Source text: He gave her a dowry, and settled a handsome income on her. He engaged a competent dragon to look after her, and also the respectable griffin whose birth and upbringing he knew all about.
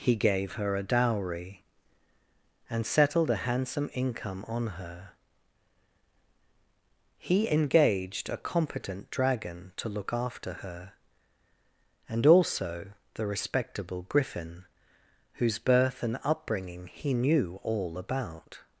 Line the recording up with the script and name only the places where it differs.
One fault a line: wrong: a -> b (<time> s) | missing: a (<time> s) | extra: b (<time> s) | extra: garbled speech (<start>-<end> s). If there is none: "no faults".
no faults